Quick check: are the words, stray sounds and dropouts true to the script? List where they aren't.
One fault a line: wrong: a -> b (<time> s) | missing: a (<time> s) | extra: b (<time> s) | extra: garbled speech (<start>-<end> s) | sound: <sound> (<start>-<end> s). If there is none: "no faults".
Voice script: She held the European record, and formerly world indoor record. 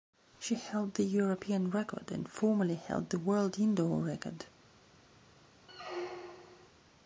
extra: held the (2.9 s)
sound: squeak (5.7-6.7 s)